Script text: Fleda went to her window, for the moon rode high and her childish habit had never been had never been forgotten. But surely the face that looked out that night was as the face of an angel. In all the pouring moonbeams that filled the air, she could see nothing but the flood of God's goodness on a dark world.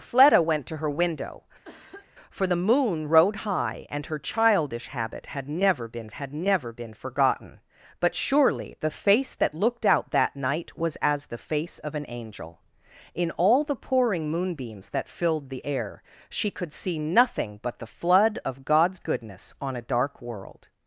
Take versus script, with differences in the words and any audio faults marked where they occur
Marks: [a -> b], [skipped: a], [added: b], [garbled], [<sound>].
Fleda went to her window, [cough] for the moon rode high and her childish habit had never been had never been forgotten. But surely the face that looked out that night was as the face of an angel. In all the pouring moonbeams that filled the air, she could see nothing but the flood of God's goodness on a dark world.